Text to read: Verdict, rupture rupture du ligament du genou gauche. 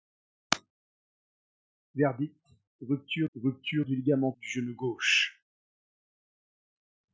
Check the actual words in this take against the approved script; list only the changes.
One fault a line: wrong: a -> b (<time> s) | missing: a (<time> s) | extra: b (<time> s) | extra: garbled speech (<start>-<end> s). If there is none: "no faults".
no faults